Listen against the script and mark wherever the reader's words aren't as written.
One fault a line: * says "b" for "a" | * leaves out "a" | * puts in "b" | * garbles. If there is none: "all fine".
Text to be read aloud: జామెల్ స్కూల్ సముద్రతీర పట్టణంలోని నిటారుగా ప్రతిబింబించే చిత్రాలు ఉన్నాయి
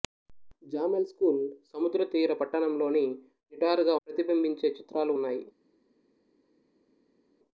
all fine